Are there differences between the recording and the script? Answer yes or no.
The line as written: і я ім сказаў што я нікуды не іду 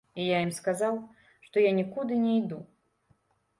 no